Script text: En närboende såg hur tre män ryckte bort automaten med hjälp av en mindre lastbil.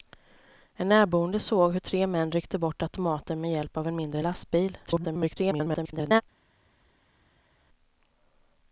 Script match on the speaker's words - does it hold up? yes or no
no